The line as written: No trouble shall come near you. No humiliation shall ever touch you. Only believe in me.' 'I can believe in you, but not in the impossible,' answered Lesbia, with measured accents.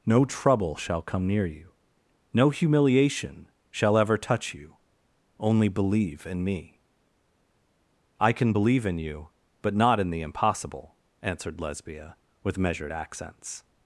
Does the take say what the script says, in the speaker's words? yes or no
yes